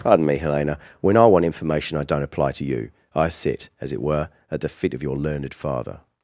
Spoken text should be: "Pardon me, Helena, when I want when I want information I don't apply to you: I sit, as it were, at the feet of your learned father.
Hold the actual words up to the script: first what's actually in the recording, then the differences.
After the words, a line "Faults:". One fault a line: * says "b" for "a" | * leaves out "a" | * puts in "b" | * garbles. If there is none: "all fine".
"Pardon me, Helena, when I want information I don't apply to you: I sit, as it were, at the feet of your learned father.
Faults:
* leaves out "when I want"